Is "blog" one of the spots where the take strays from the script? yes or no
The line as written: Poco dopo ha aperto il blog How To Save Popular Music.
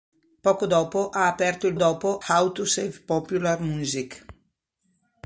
yes